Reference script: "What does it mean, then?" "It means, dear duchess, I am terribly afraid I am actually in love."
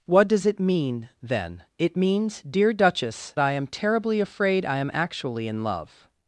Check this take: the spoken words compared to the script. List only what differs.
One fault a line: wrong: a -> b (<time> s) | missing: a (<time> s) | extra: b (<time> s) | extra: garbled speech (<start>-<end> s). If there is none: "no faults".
no faults